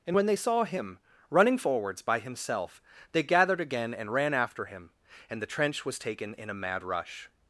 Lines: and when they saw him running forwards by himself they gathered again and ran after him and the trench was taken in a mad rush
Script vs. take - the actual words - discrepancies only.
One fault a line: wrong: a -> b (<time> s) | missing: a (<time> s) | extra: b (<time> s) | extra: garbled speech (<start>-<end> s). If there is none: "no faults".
no faults